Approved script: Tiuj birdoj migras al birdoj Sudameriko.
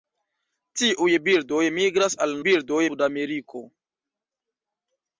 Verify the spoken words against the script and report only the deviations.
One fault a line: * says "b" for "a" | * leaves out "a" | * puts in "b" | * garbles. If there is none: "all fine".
all fine